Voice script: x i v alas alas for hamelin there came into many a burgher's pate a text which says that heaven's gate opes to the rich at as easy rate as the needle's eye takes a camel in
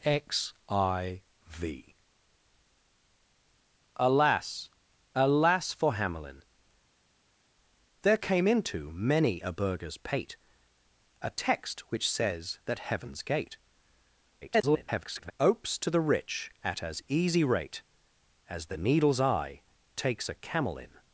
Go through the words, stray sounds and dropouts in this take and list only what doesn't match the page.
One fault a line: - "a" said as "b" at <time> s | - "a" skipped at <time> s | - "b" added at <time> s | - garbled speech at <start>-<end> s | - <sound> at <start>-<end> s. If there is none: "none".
- garbled speech at 14.4-15.3 s